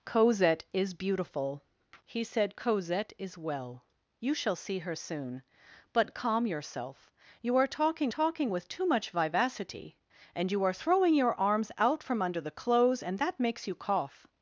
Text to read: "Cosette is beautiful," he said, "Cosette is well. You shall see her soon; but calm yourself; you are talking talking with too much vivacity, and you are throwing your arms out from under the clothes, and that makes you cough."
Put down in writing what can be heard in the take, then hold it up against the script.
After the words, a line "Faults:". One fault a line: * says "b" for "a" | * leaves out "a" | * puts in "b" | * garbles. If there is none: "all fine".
"Cosette is beautiful," he said, "Cosette is well. You shall see her soon; but calm yourself; you are talking talking with too much vivacity, and you are throwing your arms out from under the clothes, and that makes you cough."
Faults:
all fine